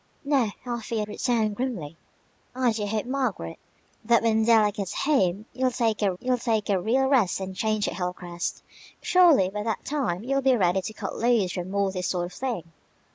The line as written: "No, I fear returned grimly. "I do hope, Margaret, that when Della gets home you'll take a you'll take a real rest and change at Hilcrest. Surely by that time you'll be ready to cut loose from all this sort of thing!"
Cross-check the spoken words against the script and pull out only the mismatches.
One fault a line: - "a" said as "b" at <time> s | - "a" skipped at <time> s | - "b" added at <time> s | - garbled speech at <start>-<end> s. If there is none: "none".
none